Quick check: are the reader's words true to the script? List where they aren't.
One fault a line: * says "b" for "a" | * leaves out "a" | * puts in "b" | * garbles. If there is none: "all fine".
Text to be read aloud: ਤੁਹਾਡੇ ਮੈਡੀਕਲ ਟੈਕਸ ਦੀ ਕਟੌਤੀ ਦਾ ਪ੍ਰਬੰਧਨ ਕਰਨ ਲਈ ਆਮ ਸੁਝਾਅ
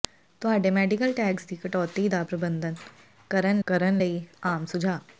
* puts in "ਕਰਨ"